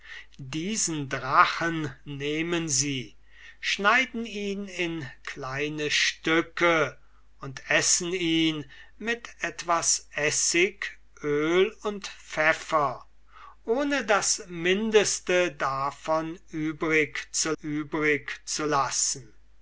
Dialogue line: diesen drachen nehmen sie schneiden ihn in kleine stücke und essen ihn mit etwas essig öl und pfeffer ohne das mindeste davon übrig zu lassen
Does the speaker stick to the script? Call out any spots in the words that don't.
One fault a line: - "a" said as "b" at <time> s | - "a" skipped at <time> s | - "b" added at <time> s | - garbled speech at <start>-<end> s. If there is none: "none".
- "übrig zu" added at 17.6 s